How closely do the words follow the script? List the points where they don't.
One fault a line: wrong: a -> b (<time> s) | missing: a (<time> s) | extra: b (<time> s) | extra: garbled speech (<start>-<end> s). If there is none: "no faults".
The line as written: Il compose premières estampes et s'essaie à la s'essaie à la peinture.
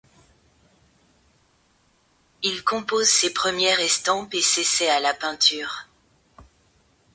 extra: ses (3.1 s)
missing: s'essaie à la (5.1 s)